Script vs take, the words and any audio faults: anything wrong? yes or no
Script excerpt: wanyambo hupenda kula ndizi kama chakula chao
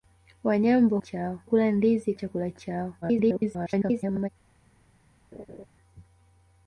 yes